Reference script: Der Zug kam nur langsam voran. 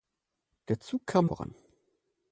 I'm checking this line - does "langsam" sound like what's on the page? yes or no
no